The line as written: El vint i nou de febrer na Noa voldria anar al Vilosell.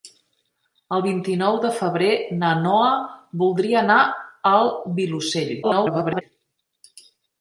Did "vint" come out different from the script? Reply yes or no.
no